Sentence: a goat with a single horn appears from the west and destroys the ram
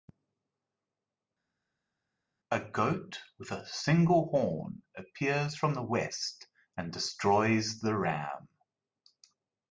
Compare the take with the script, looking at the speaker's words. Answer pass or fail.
pass